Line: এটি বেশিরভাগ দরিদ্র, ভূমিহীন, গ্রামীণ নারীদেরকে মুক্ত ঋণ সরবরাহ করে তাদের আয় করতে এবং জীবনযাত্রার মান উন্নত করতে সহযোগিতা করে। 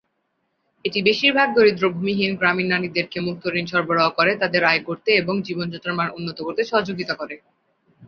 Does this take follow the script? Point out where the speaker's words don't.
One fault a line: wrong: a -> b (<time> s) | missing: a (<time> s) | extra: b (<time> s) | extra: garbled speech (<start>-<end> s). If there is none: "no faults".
no faults